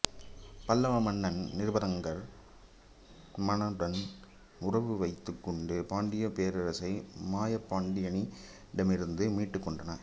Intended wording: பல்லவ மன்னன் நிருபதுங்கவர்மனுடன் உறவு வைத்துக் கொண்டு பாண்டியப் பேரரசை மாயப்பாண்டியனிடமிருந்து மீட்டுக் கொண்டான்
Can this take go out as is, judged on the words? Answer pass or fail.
pass